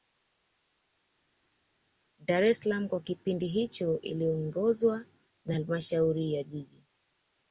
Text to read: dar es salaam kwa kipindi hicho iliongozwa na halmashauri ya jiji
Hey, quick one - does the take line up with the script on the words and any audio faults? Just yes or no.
yes